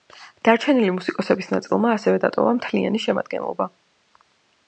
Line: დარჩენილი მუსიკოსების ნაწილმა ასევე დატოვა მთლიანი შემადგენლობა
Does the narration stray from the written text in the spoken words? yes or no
no